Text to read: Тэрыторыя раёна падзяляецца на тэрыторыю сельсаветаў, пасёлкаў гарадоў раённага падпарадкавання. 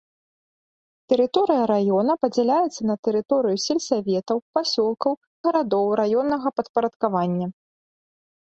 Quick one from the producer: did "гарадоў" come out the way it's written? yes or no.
yes